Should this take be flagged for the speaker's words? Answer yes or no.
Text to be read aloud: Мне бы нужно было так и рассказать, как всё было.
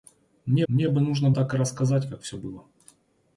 yes